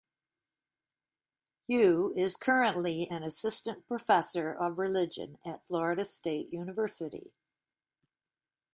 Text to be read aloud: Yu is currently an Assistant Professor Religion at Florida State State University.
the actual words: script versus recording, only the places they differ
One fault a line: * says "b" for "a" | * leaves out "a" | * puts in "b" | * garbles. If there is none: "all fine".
* puts in "of"
* leaves out "State"